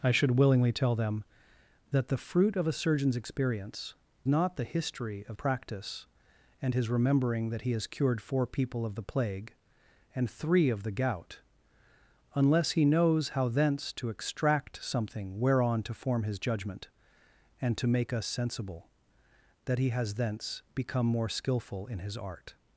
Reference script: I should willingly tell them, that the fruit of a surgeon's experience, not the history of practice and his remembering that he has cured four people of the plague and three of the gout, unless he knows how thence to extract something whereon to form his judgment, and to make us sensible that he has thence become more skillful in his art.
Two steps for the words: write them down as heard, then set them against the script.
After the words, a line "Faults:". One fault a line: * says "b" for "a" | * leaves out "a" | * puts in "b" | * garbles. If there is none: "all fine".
I should willingly tell them, that the fruit of a surgeon's experience, not the history of practice and his remembering that he has cured four people of the plague and three of the gout, unless he knows how thence to extract something whereon to form his judgment, and to make us sensible that he has thence become more skillful in his art.
Faults:
all fine